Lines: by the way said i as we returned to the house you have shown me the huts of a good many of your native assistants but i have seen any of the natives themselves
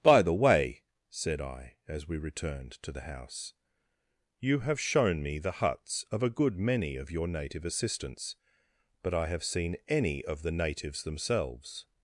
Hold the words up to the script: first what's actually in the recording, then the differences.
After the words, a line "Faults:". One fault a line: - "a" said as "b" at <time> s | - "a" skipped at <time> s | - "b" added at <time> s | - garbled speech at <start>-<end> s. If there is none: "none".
by the way said i as we returned to the house you have shown me the huts of a good many of your native assistants but i have seen any of the natives themselves
Faults:
none